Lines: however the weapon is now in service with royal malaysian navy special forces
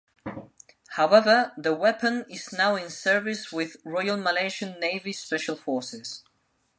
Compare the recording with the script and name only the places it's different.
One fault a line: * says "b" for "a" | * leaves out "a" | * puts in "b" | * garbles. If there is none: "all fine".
all fine